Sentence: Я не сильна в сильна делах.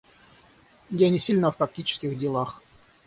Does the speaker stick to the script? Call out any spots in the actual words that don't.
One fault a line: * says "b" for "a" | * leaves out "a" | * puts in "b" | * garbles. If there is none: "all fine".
* says "практических" for "сильна"